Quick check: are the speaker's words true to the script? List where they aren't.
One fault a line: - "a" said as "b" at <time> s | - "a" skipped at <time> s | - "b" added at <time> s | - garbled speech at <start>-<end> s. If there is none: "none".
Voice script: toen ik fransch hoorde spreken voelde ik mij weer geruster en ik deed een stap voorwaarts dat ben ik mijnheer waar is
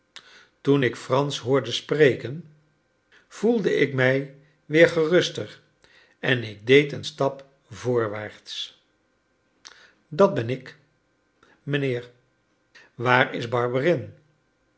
none